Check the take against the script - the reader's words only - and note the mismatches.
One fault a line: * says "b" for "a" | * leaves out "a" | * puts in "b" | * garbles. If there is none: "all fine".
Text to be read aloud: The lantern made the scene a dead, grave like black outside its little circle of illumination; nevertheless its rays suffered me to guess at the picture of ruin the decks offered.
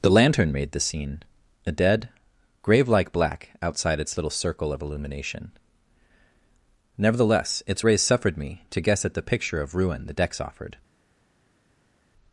all fine